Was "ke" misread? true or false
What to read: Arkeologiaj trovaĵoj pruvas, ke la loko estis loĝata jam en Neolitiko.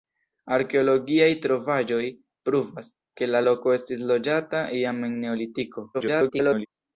false